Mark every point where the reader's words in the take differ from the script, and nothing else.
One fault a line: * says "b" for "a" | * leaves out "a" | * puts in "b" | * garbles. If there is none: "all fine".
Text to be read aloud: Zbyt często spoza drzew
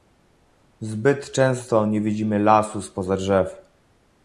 * puts in "nie widzimy lasu"